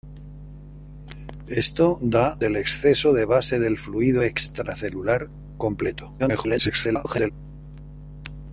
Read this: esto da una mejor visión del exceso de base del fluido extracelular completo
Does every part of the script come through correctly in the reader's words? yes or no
no